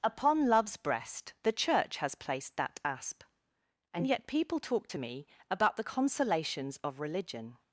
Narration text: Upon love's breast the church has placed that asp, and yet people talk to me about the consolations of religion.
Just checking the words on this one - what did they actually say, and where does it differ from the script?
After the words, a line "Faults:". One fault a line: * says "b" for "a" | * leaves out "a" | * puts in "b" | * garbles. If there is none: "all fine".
Upon love's breast the church has placed that asp, and yet people talk to me about the consolations of religion.
Faults:
all fine